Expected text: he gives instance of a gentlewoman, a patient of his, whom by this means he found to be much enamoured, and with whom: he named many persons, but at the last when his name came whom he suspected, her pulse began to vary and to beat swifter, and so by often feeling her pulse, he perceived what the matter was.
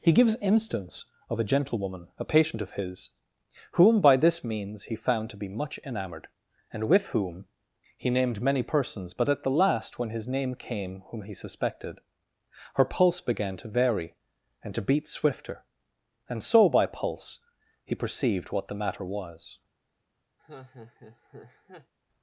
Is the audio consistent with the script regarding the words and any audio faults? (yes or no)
no